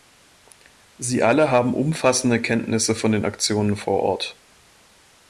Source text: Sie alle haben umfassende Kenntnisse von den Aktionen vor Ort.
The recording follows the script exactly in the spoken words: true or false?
true